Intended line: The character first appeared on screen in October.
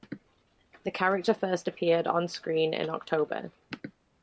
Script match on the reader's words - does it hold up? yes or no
yes